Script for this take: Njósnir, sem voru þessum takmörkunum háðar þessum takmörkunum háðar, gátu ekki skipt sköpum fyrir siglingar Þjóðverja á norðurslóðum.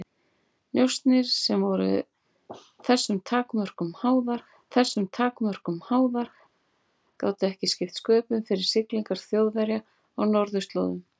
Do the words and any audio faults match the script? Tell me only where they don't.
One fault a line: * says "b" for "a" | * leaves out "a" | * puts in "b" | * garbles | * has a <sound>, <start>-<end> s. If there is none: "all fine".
all fine